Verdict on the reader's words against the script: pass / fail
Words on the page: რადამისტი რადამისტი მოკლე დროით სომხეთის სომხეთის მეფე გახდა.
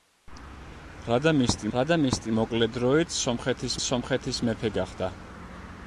pass